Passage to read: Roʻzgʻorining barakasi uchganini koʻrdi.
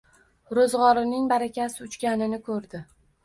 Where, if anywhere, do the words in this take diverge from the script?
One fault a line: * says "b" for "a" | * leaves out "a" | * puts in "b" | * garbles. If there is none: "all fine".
all fine